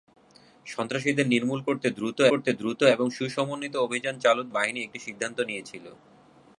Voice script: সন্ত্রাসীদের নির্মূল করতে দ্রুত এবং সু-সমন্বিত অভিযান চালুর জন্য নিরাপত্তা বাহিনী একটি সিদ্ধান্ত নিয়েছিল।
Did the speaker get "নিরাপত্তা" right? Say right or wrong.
wrong